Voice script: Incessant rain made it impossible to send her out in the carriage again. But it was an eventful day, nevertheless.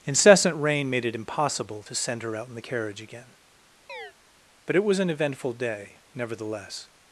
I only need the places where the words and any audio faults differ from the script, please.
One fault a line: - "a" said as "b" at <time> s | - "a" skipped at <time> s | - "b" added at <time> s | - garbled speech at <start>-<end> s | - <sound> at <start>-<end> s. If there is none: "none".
- chirp at 3.9-4.1 s